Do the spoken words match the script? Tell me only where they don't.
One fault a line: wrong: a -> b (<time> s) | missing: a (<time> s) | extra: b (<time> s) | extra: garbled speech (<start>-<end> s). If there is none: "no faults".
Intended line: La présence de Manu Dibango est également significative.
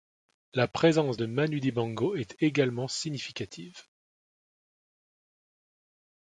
no faults